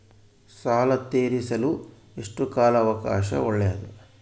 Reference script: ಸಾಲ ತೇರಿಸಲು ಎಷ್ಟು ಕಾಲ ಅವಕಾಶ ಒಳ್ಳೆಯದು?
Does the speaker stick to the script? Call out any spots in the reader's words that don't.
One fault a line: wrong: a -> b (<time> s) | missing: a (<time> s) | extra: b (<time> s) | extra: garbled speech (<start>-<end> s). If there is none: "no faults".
no faults